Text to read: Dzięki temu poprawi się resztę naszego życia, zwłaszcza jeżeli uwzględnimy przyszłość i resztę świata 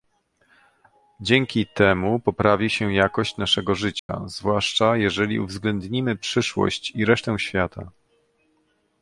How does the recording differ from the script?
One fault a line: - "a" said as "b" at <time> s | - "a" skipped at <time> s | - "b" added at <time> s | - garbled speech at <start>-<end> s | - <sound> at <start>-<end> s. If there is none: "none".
- "resztę" said as "jakość" at 2.9 s
- dropout at 4.0-4.1 s